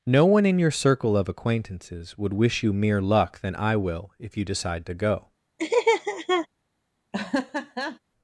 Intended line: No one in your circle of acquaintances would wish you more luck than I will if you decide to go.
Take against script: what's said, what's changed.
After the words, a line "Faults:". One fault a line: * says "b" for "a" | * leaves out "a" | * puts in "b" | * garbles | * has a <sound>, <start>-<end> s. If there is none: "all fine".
No one in your circle of acquaintances would wish you mere luck than I will if you decide to go.
Faults:
* says "mere" for "more"
* has a laugh, 5.6-6.5 s
* has a laugh, 7.1-8.0 s